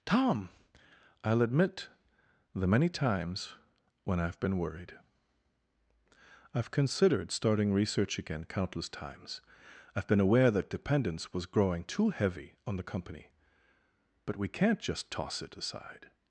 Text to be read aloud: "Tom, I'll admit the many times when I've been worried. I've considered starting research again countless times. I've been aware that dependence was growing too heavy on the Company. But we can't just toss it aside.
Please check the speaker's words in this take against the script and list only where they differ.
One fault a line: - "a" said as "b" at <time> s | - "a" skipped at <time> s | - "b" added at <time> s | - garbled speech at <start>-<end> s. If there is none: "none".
none